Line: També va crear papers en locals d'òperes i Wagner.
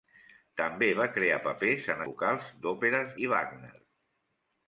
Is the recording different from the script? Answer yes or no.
no